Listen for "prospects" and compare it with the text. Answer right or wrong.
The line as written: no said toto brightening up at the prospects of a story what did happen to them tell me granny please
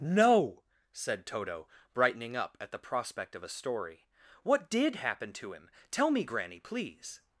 wrong